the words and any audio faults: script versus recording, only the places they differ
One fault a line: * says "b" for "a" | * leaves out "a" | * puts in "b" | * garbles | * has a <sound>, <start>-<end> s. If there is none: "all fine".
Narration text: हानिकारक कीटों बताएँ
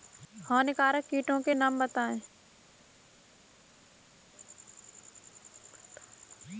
* puts in "के नाम"